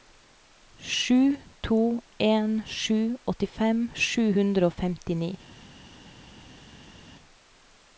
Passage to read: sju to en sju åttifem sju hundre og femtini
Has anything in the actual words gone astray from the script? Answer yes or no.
no